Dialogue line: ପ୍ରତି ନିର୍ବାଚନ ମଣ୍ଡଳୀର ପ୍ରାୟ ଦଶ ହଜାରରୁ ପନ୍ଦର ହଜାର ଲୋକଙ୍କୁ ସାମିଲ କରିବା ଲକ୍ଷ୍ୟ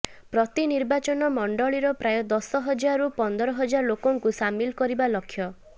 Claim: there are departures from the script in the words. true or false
false